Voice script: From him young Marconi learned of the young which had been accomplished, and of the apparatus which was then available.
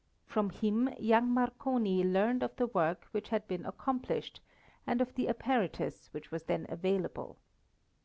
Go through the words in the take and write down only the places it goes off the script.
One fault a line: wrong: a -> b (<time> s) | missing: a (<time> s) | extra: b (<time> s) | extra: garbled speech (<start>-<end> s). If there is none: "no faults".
wrong: young -> work (2.6 s)